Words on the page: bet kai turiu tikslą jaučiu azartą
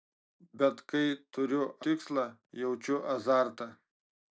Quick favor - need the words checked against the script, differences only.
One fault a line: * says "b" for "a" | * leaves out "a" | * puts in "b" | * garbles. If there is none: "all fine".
all fine